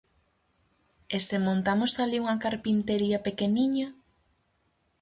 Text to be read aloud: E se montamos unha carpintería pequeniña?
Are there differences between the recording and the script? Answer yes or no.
yes